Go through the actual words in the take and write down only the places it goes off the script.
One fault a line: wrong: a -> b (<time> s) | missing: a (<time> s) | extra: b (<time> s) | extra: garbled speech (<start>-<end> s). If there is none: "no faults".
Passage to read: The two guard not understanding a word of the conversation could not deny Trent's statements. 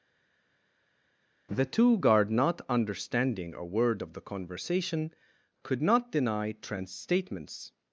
no faults